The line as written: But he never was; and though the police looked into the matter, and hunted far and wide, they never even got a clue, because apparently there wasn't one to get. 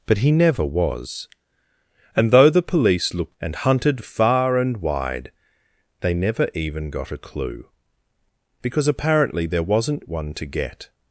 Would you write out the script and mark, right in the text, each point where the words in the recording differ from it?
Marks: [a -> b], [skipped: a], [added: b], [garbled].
But he never was; and though the police looked [skipped: into the matter,] and hunted far and wide, they never even got a clue, because apparently there wasn't one to get.